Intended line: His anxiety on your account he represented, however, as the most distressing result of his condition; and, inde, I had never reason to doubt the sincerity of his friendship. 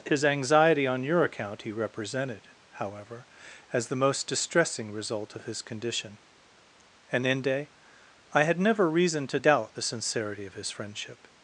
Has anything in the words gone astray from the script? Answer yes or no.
no